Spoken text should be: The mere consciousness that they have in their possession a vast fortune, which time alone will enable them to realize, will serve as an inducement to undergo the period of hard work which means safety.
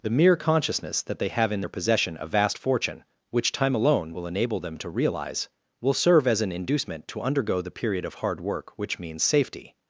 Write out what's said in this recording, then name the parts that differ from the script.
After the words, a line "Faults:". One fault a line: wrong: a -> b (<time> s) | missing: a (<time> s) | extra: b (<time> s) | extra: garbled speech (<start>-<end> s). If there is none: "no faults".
The mere consciousness that they have in their possession a vast fortune, which time alone will enable them to realize, will serve as an inducement to undergo the period of hard work which means safety.
Faults:
no faults